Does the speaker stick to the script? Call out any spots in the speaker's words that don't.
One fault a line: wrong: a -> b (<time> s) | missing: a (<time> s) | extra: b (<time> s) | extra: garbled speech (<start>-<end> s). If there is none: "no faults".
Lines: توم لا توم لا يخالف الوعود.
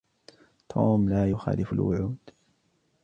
missing: توم لا (1.3 s)